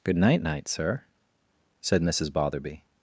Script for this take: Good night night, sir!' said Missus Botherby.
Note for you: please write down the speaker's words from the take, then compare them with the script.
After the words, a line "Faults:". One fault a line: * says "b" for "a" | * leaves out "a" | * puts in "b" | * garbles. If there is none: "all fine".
Good night night, sir!' said Missus Botherby.
Faults:
all fine